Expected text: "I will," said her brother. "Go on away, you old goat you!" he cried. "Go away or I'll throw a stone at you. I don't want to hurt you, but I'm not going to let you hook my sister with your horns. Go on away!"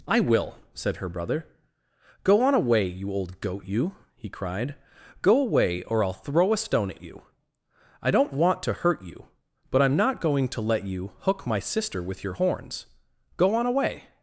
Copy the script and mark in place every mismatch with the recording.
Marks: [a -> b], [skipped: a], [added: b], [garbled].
"I will," said her brother. "Go on away, you old goat you!" he cried. "Go away or I'll throw a stone at you. I don't want to hurt you, but I'm not going to let you hook my sister with your horns. Go on away!"